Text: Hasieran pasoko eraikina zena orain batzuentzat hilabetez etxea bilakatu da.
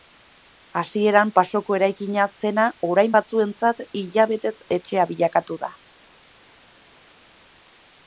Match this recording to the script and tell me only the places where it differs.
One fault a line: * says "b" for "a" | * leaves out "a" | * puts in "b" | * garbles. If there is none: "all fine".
all fine